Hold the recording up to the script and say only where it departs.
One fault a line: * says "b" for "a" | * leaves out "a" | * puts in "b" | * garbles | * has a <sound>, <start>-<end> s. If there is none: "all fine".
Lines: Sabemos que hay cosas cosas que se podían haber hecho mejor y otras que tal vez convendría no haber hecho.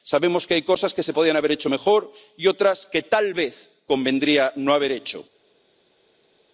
* leaves out "cosas"